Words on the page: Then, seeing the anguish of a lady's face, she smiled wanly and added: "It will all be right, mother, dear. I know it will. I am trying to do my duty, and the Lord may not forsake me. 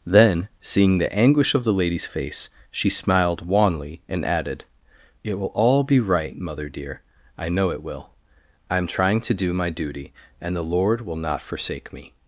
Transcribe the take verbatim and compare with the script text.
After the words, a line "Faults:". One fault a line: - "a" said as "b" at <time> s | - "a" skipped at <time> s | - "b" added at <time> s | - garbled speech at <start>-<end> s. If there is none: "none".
Then, seeing the anguish of the lady's face, she smiled wanly and added: "It will all be right, mother, dear. I know it will. I am trying to do my duty, and the Lord will not forsake me.
Faults:
- "a" said as "the" at 1.6 s
- "may" said as "will" at 11.0 s